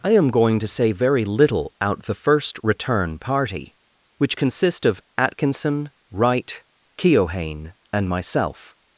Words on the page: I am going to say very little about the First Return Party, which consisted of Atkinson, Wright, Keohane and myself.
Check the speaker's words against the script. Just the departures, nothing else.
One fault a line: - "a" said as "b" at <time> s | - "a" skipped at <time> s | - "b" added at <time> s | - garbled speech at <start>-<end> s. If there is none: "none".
- "about" said as "out" at 1.8 s
- "consisted" said as "consist" at 4.3 s